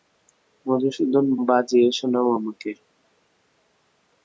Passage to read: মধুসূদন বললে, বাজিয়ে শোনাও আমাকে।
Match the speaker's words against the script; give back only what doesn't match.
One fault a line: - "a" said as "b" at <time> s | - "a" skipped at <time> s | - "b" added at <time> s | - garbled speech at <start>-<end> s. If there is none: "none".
- "বললে" skipped at 1.2 s